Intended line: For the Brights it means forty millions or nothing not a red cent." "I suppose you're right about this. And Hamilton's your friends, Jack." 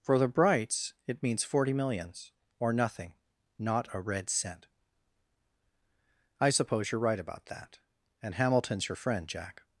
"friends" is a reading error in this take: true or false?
true